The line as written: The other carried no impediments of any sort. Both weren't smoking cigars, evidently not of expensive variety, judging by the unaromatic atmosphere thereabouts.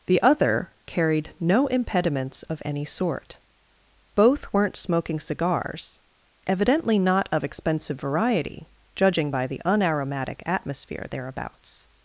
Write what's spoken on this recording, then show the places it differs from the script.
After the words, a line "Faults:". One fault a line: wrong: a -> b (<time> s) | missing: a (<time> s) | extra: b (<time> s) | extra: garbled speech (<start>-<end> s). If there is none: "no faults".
The other carried no impediments of any sort. Both weren't smoking cigars, evidently not of expensive variety, judging by the unaromatic atmosphere thereabouts.
Faults:
no faults